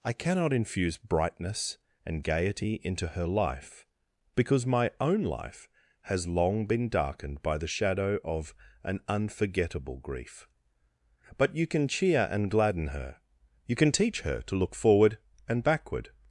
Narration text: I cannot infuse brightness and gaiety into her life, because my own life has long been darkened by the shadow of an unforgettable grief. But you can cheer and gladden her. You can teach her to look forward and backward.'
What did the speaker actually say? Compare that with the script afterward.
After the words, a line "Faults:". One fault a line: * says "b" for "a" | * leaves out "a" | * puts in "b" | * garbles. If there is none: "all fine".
I cannot infuse brightness and gaiety into her life, because my own life has long been darkened by the shadow of an unforgettable grief. But you can cheer and gladden her. You can teach her to look forward and backward.'
Faults:
all fine